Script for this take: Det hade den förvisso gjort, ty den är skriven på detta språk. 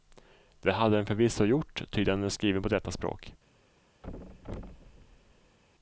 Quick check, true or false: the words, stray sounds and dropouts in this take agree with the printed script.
false